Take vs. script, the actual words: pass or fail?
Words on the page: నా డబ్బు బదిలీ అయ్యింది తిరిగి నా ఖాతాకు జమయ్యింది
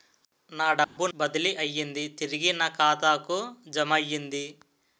pass